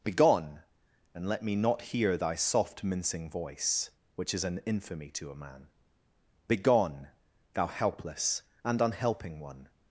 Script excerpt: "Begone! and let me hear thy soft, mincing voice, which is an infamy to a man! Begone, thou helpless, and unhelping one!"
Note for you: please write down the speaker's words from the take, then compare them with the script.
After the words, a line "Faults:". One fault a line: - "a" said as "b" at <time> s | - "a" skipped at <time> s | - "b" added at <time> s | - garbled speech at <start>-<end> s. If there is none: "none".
"Begone! and let me not hear thy soft, mincing voice, which is an infamy to a man! Begone, thou helpless, and unhelping one!"
Faults:
- "not" added at 1.6 s